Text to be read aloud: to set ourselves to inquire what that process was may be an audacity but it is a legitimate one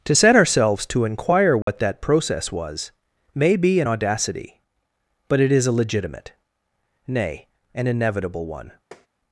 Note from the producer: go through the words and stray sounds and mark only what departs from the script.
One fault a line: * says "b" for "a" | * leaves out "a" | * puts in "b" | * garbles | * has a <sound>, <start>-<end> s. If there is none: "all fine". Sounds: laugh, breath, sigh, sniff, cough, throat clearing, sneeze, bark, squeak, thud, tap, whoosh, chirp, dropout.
* has a dropout, 1.6-1.7 s
* puts in "nay an inevitable"
* has a tap, 8.9-9.1 s